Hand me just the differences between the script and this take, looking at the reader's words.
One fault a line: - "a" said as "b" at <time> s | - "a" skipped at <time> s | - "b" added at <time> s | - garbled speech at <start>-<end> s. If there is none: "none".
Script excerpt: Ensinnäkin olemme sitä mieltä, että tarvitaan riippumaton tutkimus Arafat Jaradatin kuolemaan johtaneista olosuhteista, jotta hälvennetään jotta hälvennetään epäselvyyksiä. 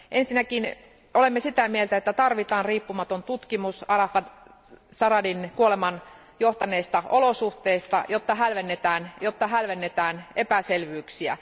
none